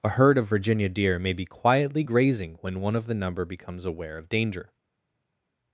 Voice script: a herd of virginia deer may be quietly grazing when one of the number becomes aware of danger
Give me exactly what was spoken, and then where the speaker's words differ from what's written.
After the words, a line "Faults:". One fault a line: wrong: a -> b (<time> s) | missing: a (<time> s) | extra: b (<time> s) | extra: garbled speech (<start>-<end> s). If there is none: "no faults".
a herd of virginia deer may be quietly grazing when one of the number becomes aware of danger
Faults:
no faults